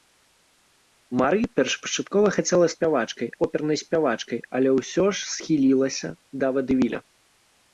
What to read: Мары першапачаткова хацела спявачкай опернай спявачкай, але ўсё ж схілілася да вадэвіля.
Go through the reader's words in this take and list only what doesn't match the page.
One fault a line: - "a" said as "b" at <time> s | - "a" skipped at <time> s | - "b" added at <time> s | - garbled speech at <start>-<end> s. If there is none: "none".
none